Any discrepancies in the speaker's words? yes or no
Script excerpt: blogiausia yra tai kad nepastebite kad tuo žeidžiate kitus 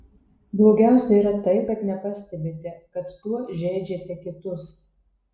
no